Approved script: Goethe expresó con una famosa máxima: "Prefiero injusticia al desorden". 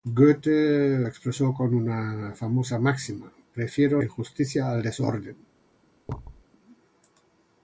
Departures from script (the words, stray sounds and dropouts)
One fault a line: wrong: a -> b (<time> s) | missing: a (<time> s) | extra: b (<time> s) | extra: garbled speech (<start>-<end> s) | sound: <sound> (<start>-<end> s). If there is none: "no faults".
sound: thud (6.1-6.4 s)